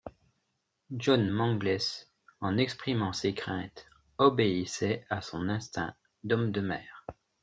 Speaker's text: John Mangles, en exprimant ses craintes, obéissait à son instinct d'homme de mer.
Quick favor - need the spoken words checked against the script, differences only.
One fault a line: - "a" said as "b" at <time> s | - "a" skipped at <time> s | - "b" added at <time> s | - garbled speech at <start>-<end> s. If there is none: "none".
none